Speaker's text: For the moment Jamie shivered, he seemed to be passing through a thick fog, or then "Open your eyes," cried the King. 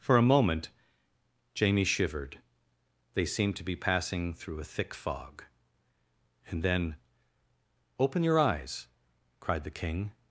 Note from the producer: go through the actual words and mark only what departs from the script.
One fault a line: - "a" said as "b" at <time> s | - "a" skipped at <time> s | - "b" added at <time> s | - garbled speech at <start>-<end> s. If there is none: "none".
- "the" said as "a" at 0.2 s
- "he" said as "they" at 3.1 s
- "or" said as "and" at 6.5 s